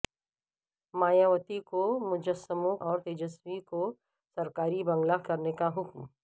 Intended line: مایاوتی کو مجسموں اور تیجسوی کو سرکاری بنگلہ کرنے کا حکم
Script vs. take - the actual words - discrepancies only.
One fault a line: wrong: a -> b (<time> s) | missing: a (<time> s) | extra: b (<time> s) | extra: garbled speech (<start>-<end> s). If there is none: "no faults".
no faults